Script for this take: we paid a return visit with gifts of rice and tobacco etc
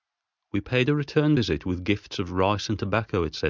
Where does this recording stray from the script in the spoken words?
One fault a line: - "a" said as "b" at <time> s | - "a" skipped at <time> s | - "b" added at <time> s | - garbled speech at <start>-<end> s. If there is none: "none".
none